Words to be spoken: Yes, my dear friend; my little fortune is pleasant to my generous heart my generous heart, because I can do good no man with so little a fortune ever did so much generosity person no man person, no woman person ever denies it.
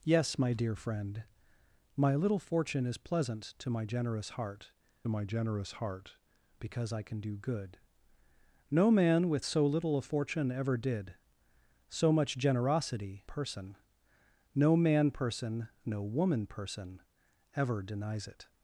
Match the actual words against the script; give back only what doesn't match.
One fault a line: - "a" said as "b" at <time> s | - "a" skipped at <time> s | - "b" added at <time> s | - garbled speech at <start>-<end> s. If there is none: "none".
none